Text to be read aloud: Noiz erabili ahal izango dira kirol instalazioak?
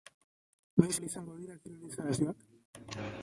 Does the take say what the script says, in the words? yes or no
no